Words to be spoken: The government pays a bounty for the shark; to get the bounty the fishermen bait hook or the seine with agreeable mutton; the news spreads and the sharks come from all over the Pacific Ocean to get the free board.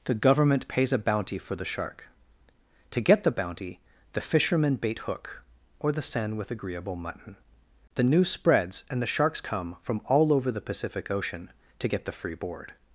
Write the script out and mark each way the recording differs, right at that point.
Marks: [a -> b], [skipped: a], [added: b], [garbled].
The government pays a bounty for the shark; to get the bounty the fishermen bait hook or the seine with agreeable mutton; the news spreads and the sharks come from all over the Pacific Ocean to get the free board.